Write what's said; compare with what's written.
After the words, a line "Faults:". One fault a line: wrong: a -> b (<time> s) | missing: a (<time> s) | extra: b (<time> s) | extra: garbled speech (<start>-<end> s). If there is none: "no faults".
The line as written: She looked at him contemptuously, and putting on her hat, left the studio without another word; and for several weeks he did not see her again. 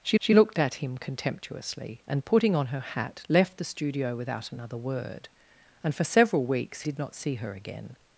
She she looked at him contemptuously, and putting on her hat, left the studio without another word; and for several weeks did not see her again.
Faults:
extra: she (0.2 s)
missing: he (6.8 s)